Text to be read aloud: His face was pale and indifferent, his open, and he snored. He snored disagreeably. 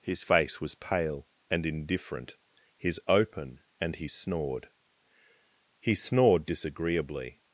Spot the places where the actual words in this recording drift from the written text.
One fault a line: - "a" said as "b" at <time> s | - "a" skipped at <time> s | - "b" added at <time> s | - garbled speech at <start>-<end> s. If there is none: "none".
none